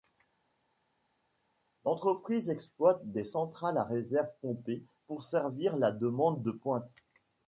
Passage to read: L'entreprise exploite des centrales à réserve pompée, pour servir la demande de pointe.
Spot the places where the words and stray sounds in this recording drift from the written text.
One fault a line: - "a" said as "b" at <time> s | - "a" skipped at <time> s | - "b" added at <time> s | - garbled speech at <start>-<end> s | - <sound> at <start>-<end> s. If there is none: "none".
none